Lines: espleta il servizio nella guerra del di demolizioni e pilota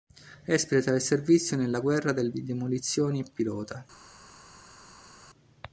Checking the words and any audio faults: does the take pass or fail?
pass